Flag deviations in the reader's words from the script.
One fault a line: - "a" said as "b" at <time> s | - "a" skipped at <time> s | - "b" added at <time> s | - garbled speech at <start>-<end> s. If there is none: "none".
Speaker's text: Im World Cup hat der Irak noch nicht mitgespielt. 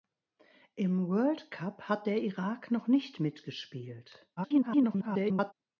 - garbled speech at 4.4-5.5 s